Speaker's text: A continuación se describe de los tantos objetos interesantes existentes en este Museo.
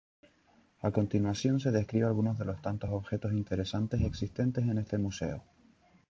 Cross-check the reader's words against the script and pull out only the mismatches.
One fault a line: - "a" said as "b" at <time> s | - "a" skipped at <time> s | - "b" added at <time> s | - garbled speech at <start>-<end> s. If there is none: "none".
- "algunos" added at 2.1 s